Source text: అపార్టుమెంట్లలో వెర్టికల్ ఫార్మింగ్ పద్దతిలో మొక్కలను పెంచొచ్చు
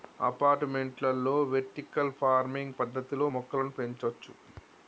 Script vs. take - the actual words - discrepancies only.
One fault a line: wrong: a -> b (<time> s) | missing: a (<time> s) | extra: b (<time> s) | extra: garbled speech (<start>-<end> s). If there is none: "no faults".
no faults